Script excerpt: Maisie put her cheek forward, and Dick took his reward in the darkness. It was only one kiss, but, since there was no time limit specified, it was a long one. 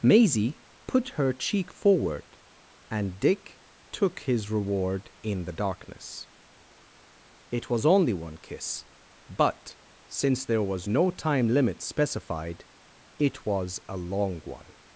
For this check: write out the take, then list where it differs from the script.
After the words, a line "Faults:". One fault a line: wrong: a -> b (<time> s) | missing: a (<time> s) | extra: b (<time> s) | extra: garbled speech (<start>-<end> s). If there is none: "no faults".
Maisie put her cheek forward, and Dick took his reward in the darkness. It was only one kiss, but, since there was no time limit specified, it was a long one.
Faults:
no faults